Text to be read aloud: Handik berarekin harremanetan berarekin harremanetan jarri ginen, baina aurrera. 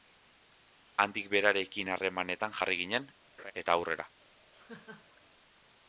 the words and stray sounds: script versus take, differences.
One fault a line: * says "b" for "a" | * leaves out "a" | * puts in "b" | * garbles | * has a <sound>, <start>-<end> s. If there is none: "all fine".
* leaves out "berarekin harremanetan"
* has a laugh, 3.4-3.5 s
* says "eta" for "baina"
* has a laugh, 4.5-5.2 s